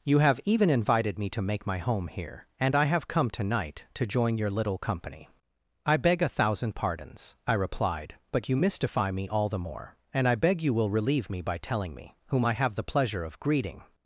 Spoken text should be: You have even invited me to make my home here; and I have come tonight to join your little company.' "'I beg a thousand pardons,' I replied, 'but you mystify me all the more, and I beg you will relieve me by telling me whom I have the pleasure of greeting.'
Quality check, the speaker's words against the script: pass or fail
pass